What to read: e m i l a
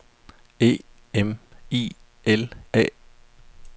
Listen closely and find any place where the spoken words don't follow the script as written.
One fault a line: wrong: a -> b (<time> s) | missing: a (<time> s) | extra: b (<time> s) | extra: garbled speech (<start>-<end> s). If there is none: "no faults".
no faults